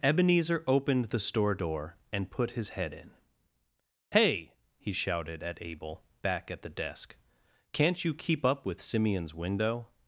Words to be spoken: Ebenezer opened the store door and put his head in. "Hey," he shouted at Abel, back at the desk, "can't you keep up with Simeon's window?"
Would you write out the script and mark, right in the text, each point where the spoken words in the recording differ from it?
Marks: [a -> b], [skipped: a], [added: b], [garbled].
Ebenezer opened the store door and put his head in. "Hey," he shouted at Abel, back at the desk, "can't you keep up with Simeon's window?"